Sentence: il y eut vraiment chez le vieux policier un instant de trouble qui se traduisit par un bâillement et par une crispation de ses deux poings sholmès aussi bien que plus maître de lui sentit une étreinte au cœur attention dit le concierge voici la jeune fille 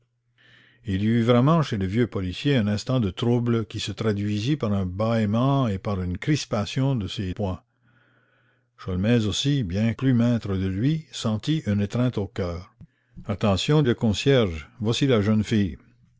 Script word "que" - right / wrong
wrong